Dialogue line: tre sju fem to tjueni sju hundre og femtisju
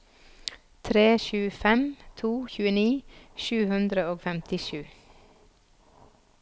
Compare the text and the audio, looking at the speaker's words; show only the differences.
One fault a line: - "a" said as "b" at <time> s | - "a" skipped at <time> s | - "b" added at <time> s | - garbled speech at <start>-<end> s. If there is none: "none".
none